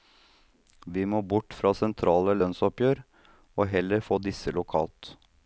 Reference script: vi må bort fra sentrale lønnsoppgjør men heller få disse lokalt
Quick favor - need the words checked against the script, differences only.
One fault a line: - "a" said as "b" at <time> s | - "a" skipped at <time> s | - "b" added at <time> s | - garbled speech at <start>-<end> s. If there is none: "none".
- "men" said as "og" at 3.6 s